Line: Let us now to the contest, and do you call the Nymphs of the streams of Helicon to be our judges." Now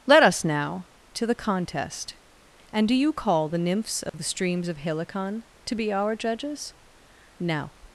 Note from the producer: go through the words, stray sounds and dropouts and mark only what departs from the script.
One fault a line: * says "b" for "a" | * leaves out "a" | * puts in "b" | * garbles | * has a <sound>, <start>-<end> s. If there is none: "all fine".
* has a dropout, 4.1-4.1 s